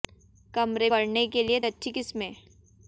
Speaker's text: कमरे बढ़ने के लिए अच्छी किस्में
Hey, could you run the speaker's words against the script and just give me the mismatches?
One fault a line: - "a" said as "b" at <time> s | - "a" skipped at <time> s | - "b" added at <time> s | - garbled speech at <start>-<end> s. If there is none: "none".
none